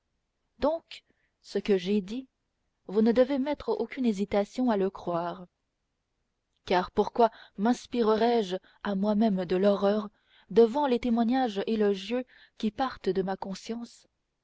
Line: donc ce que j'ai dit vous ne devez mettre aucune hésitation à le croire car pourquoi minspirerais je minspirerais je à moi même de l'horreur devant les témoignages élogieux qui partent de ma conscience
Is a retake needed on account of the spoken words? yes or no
yes